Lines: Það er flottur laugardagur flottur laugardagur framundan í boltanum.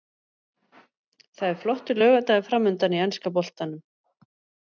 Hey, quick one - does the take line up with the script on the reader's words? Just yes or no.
no